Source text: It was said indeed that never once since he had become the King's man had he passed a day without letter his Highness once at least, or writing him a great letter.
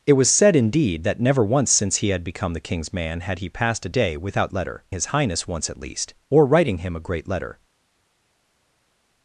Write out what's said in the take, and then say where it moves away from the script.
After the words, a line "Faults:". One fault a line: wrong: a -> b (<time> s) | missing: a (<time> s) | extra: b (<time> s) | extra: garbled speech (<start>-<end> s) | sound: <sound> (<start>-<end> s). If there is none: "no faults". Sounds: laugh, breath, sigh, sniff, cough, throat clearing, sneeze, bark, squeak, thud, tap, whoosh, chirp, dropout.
It was said indeed that never once since he had become the King's man had he passed a day without letter his Highness once at least, or writing him a great letter.
Faults:
no faults